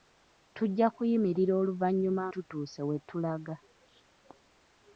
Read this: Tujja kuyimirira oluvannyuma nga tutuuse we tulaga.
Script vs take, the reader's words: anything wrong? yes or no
yes